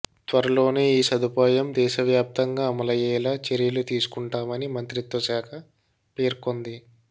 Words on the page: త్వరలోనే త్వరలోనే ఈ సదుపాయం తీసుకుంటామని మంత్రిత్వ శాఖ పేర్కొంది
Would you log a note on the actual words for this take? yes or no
yes